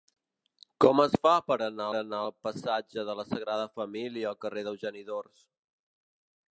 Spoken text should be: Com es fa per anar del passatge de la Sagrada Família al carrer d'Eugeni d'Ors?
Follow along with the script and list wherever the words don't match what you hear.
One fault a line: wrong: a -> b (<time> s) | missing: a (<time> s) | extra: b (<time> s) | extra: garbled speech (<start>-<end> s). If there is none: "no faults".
extra: anar (2.0 s)